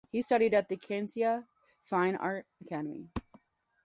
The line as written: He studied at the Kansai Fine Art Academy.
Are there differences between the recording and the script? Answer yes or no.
no